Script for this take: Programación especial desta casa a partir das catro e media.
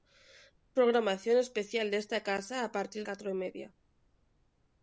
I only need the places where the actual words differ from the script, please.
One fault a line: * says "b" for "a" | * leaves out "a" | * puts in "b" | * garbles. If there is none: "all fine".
* leaves out "das"